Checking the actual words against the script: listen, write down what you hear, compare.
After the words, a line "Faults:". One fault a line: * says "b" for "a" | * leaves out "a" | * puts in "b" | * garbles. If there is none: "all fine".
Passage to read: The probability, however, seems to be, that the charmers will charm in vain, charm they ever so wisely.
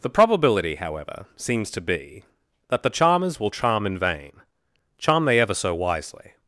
The probability, however, seems to be, that the charmers will charm in vain, charm they ever so wisely.
Faults:
all fine